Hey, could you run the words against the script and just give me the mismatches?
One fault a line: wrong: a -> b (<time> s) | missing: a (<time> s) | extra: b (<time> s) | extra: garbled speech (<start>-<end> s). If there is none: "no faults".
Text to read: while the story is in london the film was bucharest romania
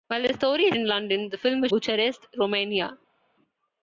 no faults